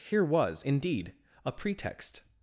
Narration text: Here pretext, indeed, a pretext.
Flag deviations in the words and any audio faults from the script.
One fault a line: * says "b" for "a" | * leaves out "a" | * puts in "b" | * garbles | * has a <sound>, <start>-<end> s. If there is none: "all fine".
* says "was" for "pretext"